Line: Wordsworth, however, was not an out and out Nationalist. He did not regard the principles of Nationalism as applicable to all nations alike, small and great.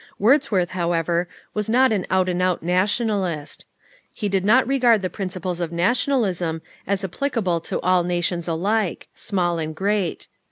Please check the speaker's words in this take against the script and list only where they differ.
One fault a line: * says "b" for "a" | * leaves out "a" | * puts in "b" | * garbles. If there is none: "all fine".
all fine